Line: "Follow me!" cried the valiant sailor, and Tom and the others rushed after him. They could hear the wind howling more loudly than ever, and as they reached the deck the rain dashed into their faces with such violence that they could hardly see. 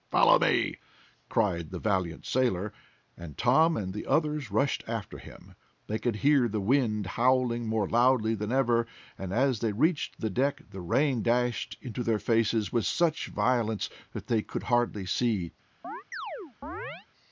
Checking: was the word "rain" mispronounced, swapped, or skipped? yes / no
no